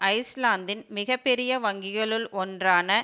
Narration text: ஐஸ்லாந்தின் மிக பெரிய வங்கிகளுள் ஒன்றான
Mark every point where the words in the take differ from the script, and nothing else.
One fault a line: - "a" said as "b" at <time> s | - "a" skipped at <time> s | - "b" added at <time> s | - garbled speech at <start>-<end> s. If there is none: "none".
none